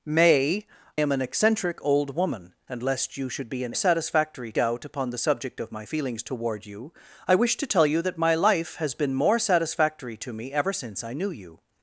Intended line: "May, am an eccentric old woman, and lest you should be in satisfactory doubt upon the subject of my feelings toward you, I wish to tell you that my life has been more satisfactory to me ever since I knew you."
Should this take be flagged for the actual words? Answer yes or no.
no